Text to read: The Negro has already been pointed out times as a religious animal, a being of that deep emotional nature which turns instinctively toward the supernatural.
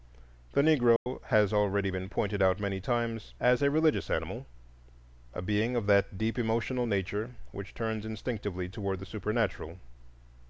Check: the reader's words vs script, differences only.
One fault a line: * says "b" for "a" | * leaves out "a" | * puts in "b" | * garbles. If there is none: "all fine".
* puts in "many"